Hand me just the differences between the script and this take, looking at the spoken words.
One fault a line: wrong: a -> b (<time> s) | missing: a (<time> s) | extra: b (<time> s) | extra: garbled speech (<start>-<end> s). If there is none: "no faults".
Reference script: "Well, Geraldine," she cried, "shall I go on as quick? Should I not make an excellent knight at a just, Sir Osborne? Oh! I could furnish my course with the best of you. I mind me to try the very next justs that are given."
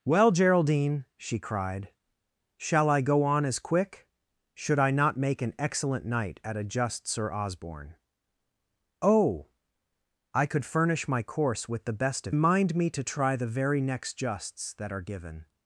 missing: you I (12.3 s)